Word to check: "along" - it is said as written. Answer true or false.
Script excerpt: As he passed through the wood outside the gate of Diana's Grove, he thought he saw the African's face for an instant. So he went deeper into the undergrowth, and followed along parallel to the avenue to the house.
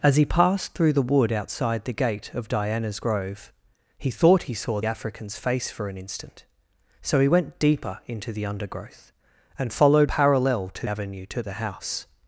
false